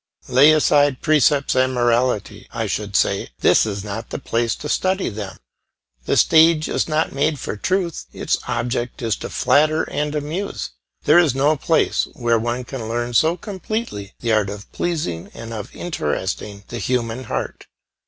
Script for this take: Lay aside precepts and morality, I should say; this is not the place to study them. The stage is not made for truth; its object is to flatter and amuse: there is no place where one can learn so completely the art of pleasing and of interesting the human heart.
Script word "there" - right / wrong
right